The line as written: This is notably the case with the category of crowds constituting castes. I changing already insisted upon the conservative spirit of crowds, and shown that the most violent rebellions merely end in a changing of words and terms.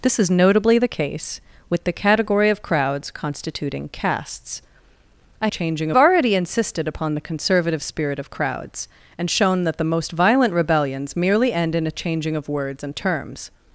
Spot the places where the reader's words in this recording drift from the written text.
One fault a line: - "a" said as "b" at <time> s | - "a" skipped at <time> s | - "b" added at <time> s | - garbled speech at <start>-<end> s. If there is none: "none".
none